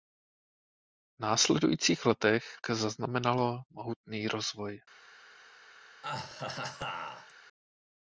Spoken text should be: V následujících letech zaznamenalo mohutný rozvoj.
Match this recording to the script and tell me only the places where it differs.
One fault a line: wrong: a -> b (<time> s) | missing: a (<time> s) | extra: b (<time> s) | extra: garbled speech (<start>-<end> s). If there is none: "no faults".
no faults